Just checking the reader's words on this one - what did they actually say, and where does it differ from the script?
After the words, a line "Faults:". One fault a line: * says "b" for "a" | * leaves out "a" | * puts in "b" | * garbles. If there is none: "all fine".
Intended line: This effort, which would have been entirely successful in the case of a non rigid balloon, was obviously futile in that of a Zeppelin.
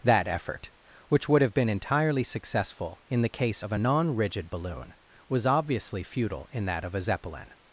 That effort, which would have been entirely successful in the case of a non rigid balloon, was obviously futile in that of a Zeppelin.
Faults:
* says "That" for "This"